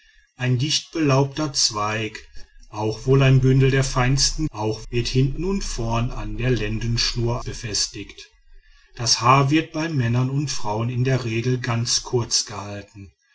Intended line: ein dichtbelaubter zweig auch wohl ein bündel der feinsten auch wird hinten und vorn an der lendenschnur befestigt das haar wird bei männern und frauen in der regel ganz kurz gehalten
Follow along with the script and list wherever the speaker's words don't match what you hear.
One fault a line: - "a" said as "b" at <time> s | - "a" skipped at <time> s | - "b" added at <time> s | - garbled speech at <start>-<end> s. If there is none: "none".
none